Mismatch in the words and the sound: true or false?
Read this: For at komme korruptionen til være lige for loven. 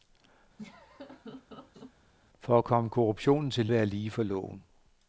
true